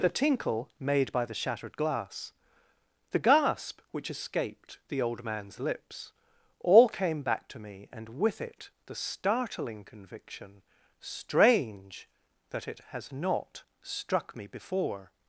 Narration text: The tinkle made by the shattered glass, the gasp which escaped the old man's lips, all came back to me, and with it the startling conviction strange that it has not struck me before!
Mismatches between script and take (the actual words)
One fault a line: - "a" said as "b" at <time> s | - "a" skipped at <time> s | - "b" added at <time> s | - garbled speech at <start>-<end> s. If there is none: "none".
none